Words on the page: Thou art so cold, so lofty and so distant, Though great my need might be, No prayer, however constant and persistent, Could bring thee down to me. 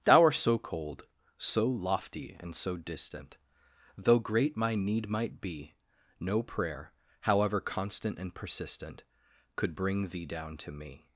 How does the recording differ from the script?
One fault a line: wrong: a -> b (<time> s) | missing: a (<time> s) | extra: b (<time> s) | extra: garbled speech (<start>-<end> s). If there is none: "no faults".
no faults